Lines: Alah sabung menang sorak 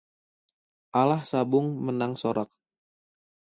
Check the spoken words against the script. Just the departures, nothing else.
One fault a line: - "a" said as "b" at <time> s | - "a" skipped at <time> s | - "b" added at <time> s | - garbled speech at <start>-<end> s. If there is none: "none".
none